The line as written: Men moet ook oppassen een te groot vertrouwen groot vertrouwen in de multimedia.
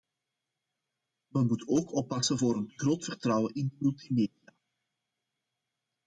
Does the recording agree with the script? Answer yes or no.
no